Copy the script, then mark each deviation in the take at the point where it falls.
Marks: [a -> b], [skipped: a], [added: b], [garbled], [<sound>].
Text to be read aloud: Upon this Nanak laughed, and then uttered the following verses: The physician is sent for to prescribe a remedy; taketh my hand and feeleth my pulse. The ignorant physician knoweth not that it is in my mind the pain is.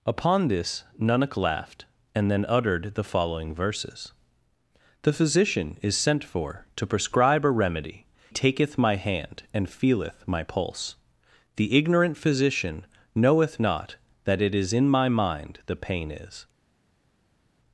Upon this Nanak laughed, and then uttered the following verses: The physician is sent for to prescribe a remedy; taketh my hand and feeleth my pulse. The ignorant physician knoweth not that it is in my mind the pain is.